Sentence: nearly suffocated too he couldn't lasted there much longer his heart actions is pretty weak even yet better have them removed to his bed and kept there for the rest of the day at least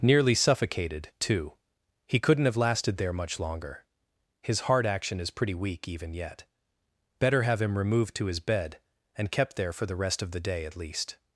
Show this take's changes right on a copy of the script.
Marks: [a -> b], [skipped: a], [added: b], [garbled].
nearly suffocated too he couldn't [added: have] lasted there much longer his heart [actions -> action] is pretty weak even yet better have [them -> him] removed to his bed and kept there for the rest of the day at least